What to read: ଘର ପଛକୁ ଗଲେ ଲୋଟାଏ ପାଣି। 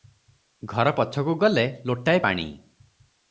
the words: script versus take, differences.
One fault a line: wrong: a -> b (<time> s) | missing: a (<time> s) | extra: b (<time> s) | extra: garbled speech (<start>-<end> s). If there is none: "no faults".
no faults